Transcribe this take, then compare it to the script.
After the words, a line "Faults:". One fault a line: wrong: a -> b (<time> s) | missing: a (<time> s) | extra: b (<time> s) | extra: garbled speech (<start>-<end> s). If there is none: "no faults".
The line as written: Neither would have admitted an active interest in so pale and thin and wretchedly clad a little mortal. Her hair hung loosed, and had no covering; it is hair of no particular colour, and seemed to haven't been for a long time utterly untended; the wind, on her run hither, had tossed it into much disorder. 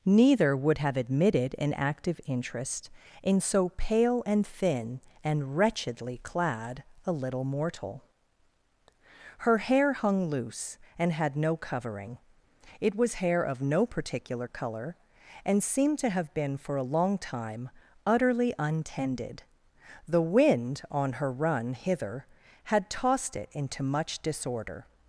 Neither would have admitted an active interest in so pale and thin and wretchedly clad a little mortal. Her hair hung loose, and had no covering; it was hair of no particular colour, and seemed to have been for a long time utterly untended; the wind, on her run hither, had tossed it into much disorder.
Faults:
wrong: loosed -> loose (10.3 s)
wrong: is -> was (13.0 s)
wrong: haven't -> have (16.1 s)